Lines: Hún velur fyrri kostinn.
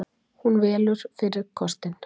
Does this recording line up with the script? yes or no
yes